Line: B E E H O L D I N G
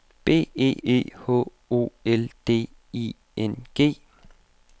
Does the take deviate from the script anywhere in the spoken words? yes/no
no